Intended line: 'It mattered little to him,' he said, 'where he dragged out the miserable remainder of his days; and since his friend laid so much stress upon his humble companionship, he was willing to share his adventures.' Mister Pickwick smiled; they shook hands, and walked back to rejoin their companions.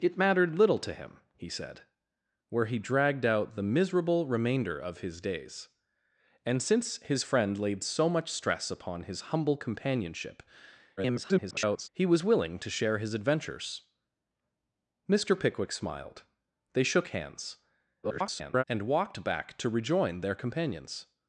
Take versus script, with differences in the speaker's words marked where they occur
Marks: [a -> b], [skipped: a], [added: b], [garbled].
'It mattered little to him,' he said, 'where he dragged out the miserable remainder of his days; and since his friend laid so much stress upon his humble companionship, [garbled] he was willing to share his adventures.' Mister Pickwick smiled; they shook hands, [garbled] and walked back to rejoin their companions.